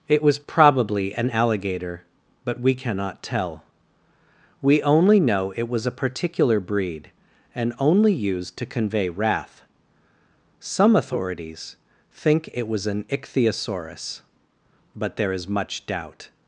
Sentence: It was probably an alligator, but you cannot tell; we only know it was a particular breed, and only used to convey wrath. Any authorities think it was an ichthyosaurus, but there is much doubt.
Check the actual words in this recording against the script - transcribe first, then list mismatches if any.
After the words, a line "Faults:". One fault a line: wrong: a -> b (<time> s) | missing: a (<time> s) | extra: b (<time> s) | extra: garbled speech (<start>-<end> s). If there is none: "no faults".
It was probably an alligator, but we cannot tell; we only know it was a particular breed, and only used to convey wrath. Some authorities think it was an ichthyosaurus, but there is much doubt.
Faults:
wrong: you -> we (2.6 s)
wrong: Any -> Some (10.6 s)